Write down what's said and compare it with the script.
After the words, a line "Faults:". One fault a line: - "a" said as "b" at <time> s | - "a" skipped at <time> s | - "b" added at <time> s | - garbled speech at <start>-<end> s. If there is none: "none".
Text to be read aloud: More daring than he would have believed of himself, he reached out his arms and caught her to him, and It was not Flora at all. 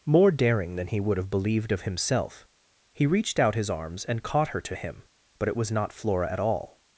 More daring than he would have believed of himself, he reached out his arms and caught her to him, but It was not Flora at all.
Faults:
- "and" said as "but" at 5.4 s